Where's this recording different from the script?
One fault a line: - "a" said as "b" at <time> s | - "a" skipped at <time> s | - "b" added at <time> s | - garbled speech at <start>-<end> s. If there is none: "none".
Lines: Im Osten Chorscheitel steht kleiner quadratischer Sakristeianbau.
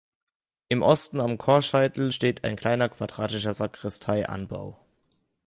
- "am" added at 1.2 s
- "ein" added at 2.4 s